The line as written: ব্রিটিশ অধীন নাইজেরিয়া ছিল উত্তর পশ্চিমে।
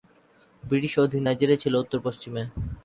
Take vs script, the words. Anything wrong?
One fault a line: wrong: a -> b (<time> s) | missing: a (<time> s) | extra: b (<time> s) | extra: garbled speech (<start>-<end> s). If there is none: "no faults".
no faults